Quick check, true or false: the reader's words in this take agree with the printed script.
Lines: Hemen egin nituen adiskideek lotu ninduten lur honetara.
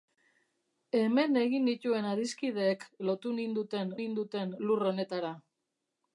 false